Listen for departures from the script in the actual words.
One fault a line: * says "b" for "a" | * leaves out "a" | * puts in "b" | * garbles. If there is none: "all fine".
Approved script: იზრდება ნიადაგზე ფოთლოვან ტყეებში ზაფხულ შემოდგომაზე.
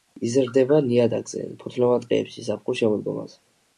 all fine